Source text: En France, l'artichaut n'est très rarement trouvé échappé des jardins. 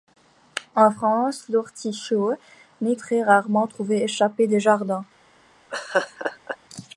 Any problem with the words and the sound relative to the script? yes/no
yes